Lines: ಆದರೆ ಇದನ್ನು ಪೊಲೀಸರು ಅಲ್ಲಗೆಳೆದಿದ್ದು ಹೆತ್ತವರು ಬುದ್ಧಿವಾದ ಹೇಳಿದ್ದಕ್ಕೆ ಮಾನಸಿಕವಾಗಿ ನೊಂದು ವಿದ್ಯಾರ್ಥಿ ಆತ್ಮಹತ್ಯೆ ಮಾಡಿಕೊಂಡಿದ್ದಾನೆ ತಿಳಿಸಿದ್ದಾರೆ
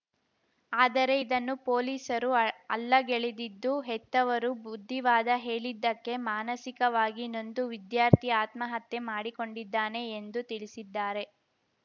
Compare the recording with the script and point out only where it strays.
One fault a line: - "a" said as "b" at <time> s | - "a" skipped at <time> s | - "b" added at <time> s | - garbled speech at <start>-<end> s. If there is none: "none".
- "ಎಂದು" added at 10.2 s